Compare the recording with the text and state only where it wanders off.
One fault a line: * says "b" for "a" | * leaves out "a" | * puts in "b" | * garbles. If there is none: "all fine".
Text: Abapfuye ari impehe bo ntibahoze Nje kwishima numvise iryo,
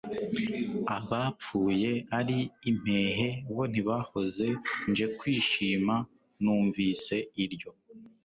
all fine